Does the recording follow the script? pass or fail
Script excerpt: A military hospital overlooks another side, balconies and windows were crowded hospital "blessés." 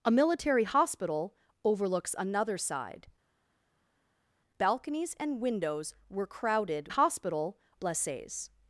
pass